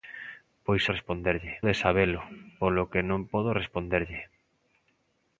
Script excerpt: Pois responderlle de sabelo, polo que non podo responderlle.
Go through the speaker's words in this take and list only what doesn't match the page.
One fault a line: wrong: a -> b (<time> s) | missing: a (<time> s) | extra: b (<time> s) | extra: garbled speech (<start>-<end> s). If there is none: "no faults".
no faults